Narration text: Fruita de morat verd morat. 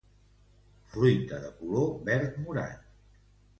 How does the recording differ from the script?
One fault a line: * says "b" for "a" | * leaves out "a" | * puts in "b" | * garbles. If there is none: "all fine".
* says "color" for "morat"